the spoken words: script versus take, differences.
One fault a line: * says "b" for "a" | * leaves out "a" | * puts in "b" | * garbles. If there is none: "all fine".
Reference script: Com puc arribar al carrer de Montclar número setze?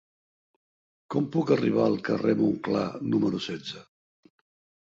all fine